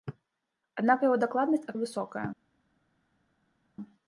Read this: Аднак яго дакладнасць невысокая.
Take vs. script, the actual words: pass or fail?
pass